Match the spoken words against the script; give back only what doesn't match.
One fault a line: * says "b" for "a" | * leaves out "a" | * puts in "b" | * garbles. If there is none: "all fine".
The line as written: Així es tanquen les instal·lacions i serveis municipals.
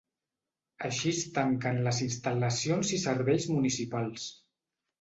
all fine